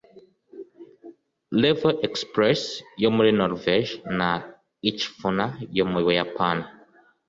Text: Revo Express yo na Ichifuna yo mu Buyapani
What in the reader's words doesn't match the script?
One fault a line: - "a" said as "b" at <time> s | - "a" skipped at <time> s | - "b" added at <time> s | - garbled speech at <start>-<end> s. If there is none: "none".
- "muri Norvège" added at 3.1 s